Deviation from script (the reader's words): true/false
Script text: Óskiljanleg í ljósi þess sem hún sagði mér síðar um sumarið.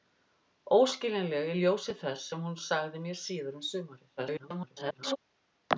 true